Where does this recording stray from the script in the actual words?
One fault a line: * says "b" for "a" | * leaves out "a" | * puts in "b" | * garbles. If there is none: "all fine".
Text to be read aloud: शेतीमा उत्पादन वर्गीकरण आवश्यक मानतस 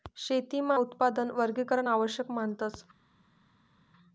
all fine